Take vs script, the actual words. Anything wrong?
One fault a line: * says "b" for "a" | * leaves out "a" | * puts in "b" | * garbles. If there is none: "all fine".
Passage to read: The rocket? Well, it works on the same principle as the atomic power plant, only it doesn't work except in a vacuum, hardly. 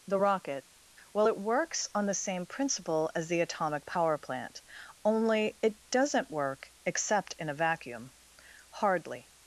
all fine